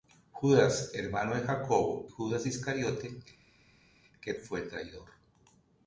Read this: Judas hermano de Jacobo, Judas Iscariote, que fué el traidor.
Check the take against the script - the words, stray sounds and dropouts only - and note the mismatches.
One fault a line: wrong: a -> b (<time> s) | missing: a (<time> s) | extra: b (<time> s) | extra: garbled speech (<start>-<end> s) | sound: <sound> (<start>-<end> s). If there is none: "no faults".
no faults